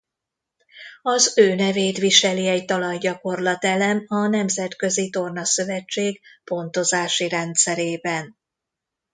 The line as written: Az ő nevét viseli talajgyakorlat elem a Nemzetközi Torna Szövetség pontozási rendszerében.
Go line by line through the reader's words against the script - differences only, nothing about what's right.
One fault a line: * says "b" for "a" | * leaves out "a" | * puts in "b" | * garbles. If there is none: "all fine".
* puts in "egy"